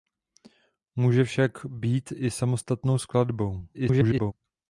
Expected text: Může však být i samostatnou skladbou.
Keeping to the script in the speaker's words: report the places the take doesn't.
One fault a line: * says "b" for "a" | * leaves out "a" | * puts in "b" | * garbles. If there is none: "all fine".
* garbles